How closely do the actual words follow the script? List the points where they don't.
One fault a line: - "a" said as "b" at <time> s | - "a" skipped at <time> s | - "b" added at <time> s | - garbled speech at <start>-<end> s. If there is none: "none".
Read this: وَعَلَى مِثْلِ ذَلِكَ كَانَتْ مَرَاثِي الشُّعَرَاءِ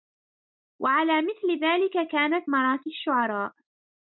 none